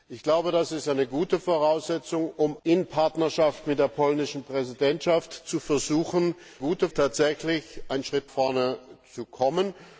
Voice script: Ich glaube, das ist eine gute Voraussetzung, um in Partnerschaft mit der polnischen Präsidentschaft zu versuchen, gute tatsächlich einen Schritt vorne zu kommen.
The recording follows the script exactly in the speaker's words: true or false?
true